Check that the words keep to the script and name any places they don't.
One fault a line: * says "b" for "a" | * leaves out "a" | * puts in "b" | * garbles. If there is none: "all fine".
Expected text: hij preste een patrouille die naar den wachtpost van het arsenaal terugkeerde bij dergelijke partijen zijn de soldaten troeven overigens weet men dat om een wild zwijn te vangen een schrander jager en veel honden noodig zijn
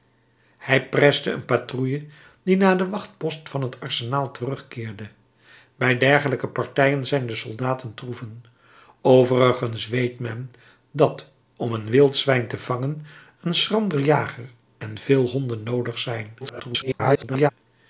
* garbles